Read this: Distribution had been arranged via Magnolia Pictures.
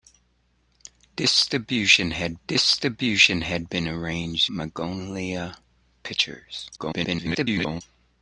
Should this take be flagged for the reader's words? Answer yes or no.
yes